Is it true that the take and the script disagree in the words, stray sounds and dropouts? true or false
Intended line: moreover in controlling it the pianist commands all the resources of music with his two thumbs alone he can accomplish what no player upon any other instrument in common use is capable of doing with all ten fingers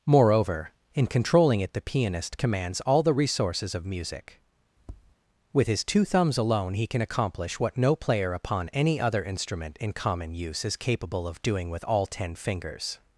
true